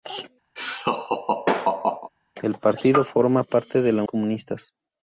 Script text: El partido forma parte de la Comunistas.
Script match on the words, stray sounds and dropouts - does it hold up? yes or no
no